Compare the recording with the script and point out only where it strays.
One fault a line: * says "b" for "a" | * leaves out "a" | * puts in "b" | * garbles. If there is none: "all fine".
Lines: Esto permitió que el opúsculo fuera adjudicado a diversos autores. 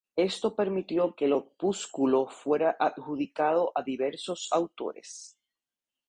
all fine